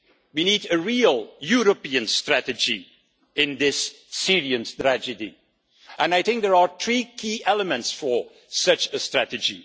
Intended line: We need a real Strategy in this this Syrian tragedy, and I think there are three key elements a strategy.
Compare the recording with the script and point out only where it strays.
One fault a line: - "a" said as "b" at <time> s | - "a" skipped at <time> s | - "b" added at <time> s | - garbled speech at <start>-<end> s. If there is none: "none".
- "European" added at 1.4 s
- "this" skipped at 3.9 s
- "for such" added at 7.9 s